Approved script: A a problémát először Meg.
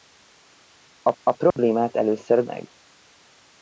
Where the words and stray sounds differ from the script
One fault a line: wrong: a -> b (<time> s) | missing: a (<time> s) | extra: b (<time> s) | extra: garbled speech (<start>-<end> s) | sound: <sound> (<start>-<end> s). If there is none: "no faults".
sound: dropout (1.5-1.6 s)